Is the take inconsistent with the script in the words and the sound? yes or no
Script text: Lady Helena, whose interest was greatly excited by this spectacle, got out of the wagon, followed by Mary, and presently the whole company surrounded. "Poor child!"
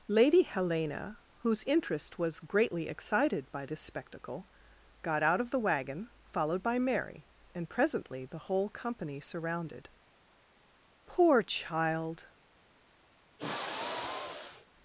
yes